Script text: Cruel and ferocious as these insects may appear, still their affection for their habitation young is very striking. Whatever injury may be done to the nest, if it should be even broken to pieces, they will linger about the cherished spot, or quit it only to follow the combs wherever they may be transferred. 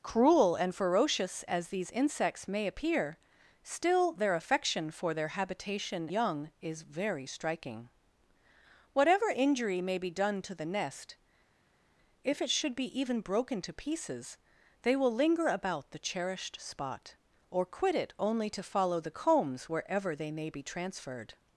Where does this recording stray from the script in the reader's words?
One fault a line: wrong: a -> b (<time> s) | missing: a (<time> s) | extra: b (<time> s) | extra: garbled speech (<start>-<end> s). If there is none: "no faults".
no faults